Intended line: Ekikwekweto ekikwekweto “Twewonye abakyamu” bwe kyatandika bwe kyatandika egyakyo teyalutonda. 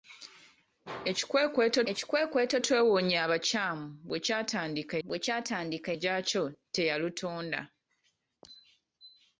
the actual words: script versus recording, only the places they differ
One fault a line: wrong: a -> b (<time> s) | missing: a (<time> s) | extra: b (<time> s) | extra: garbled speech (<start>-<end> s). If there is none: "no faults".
no faults